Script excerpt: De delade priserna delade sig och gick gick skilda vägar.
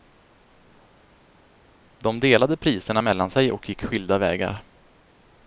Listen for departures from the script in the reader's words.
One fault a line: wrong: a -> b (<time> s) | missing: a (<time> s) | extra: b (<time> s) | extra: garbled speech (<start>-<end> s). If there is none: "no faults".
wrong: delade -> mellan (3.0 s)
missing: gick (3.8 s)